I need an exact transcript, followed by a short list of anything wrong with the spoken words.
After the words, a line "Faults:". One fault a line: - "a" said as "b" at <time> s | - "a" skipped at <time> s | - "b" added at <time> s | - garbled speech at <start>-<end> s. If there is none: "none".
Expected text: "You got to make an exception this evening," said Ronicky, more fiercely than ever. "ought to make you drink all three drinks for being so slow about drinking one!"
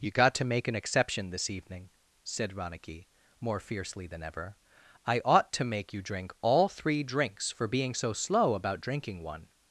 "You got to make an exception this evening," said Ronicky, more fiercely than ever. "I ought to make you drink all three drinks for being so slow about drinking one!"
Faults:
- "I" added at 5.0 s